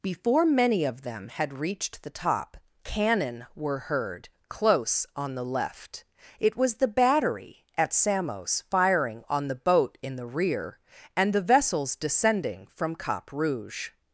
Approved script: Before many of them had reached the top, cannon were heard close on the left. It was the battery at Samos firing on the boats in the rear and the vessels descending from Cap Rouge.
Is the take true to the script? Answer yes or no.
no